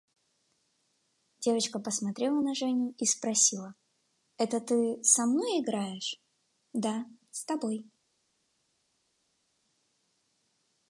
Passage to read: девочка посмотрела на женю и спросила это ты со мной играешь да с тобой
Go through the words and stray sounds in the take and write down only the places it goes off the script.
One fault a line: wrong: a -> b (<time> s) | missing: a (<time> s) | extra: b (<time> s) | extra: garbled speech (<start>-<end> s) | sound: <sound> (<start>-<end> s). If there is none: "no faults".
no faults